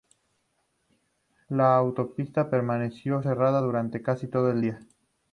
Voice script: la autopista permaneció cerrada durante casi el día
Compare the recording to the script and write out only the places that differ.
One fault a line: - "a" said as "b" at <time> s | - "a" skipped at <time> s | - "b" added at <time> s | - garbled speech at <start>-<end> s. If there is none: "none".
- "todo" added at 4.3 s